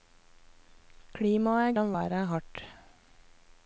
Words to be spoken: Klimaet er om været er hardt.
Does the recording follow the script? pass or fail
pass